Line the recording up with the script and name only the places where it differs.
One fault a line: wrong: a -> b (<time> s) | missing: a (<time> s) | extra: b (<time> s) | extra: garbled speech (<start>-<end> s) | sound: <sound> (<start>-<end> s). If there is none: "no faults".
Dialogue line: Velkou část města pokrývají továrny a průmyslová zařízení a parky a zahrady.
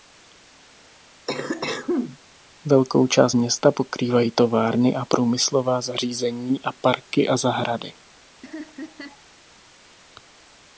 sound: cough (1.3-2.2 s)
sound: laugh (8.4-9.2 s)